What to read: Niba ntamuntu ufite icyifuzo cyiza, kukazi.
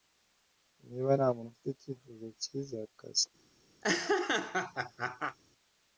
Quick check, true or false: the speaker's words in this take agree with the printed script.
true